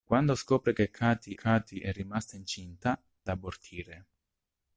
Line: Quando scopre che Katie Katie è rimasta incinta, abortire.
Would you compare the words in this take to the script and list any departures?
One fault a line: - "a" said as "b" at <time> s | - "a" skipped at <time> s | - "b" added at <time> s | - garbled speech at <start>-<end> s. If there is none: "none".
none